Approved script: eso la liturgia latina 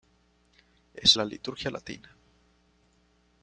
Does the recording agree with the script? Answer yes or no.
yes